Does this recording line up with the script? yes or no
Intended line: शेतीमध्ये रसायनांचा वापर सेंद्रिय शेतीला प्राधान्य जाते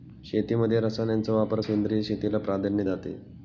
yes